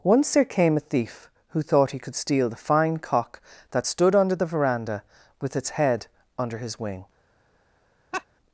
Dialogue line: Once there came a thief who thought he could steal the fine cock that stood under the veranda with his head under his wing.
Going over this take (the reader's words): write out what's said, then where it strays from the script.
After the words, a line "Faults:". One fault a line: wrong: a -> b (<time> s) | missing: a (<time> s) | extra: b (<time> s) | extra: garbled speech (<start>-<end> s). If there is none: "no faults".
Once there came a thief who thought he could steal the fine cock that stood under the veranda with its head under his wing.
Faults:
wrong: his -> its (5.6 s)